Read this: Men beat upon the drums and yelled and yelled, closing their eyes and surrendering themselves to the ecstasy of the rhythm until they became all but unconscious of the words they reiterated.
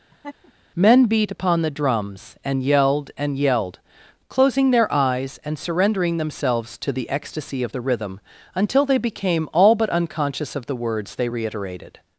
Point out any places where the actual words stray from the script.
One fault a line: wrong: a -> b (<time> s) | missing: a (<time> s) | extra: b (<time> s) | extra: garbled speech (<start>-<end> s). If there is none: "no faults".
no faults